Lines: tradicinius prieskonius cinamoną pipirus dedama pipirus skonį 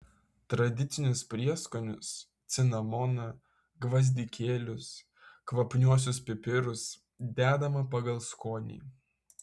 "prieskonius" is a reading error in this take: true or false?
false